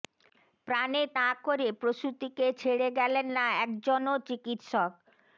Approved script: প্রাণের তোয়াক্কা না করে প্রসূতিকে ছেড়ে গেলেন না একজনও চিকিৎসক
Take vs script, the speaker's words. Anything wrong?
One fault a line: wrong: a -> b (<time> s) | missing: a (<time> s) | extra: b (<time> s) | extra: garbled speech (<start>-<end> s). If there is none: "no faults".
missing: তোয়াক্কা (1.1 s)